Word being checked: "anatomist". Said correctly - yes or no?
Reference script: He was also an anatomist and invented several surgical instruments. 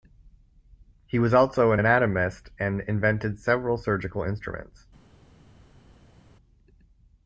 yes